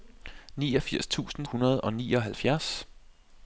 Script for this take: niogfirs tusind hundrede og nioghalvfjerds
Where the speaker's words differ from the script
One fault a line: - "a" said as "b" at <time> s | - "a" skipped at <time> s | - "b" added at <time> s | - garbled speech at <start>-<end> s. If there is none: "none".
none